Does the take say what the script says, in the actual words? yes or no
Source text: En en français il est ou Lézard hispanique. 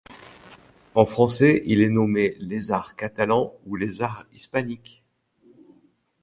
no